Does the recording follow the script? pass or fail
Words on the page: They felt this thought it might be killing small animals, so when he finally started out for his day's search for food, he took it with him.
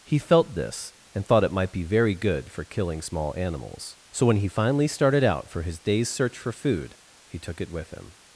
fail